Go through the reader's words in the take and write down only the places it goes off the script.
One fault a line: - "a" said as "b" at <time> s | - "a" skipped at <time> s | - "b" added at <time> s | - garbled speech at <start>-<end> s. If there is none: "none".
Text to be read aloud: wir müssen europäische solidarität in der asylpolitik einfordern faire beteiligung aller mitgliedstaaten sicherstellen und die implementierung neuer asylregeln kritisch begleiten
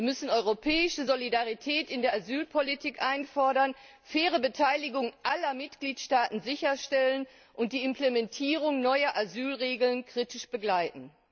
none